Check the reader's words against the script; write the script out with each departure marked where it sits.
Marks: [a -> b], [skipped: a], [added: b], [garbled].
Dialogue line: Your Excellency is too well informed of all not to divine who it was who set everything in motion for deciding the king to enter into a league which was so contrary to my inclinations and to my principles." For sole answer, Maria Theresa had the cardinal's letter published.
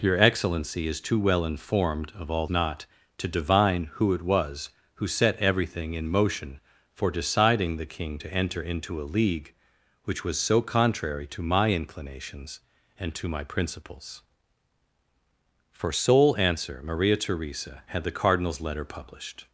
Your Excellency is too well informed of all not to divine who it was who set everything in motion for deciding the king to enter into a league which was so contrary to my inclinations and to my principles." For sole answer, Maria Theresa had the cardinal's letter published.